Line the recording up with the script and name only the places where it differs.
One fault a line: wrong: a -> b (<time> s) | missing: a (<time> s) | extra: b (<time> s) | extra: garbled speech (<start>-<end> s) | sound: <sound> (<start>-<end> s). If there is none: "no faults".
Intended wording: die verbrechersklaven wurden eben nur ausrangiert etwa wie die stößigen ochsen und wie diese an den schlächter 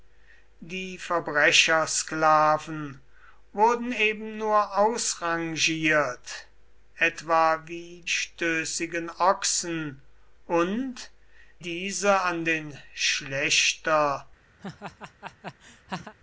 missing: die (8.0 s)
missing: wie (11.1 s)
sound: laugh (14.6-16.1 s)